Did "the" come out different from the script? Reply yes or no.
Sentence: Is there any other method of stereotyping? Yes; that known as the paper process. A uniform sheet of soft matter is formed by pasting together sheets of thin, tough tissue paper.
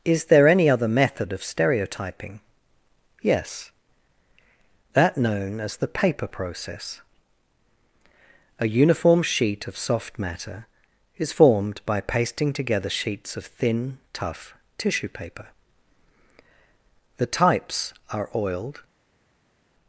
no